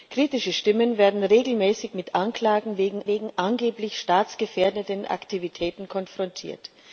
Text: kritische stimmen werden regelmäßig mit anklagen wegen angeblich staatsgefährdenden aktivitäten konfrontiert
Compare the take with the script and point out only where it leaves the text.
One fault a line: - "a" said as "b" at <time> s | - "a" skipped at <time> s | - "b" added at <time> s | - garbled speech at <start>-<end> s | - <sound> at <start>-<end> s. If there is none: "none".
- "wegen" added at 3.1 s